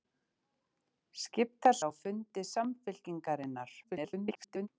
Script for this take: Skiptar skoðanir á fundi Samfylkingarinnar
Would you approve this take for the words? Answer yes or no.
no